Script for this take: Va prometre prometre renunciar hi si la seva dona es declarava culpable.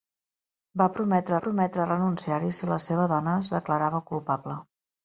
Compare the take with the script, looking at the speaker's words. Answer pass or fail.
pass